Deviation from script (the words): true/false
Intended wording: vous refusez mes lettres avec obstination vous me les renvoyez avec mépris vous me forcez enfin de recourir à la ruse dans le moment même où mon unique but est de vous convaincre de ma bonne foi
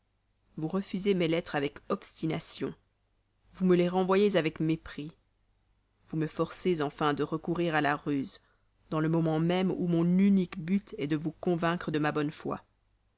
false